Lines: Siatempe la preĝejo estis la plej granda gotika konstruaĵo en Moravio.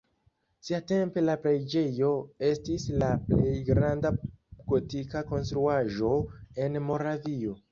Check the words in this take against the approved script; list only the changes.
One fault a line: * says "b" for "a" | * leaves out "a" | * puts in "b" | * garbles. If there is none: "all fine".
all fine